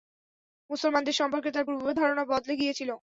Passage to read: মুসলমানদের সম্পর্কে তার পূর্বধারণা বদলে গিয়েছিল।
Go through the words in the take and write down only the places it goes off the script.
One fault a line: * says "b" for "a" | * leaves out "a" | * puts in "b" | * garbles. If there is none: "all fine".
all fine